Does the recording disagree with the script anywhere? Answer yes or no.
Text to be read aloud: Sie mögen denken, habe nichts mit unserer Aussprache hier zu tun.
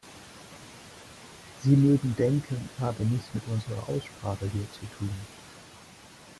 no